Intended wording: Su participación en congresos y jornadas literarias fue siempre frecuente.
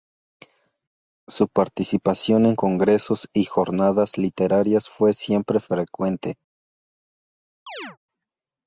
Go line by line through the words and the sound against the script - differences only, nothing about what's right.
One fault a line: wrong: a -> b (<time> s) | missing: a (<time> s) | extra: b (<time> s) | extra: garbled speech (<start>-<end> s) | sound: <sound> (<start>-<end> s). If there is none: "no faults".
sound: chirp (7.7-8.0 s)